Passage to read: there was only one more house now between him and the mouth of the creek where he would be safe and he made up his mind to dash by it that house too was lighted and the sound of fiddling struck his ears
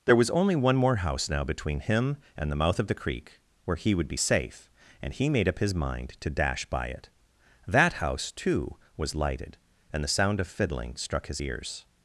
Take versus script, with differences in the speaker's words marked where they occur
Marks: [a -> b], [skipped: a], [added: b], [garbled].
there was only one more house now between him and the mouth of the creek where he would be safe and he made up his mind to dash by it that house too was lighted and the sound of fiddling struck his ears